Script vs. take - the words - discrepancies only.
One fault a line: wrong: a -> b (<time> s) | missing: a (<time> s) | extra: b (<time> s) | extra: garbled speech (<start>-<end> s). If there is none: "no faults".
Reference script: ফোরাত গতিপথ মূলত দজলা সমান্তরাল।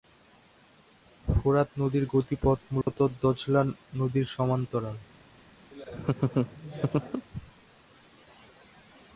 extra: নদীর (1.8 s)
extra: নদীর (3.9 s)